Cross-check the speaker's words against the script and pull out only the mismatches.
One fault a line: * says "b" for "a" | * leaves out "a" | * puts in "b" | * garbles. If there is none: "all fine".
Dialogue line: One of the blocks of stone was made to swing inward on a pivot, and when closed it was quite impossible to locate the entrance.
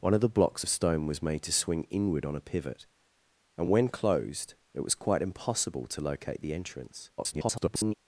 * garbles